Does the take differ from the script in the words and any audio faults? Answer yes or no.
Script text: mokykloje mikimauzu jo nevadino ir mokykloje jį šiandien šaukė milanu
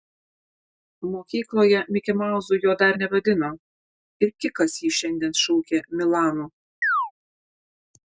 yes